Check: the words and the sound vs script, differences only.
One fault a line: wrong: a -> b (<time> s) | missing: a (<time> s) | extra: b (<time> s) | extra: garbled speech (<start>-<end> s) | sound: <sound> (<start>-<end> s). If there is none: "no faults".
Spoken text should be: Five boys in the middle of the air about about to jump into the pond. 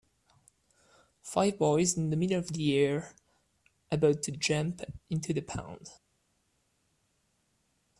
missing: about (4.2 s)